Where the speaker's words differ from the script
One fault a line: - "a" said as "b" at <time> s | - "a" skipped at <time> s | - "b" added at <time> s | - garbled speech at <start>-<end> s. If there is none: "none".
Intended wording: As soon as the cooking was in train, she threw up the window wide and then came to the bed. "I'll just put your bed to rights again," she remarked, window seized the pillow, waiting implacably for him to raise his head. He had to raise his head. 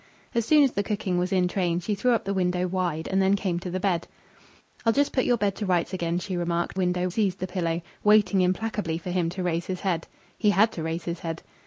none